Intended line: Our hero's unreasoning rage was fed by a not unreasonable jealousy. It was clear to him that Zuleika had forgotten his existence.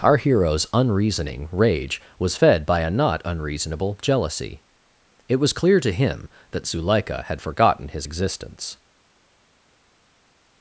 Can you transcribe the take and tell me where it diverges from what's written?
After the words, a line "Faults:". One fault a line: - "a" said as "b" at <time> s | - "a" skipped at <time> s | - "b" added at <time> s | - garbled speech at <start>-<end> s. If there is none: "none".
Our hero's unreasoning rage was fed by a not unreasonable jealousy. It was clear to him that Zuleika had forgotten his existence.
Faults:
none